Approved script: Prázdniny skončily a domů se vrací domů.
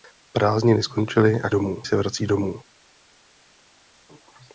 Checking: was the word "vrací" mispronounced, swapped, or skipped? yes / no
no